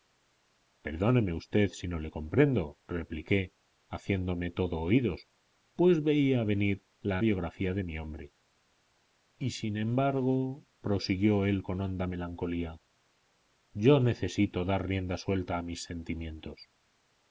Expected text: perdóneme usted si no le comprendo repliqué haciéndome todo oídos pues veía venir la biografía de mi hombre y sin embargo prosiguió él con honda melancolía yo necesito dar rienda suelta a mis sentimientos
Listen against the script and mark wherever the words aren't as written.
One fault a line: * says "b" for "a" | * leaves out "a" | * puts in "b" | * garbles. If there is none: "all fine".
all fine